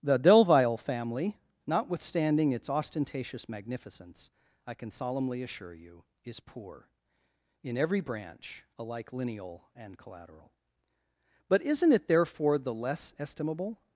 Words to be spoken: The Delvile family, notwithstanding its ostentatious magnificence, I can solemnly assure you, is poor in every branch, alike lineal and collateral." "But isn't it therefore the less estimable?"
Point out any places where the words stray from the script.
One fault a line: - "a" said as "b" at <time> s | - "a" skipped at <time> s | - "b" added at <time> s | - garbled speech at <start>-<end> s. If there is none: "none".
none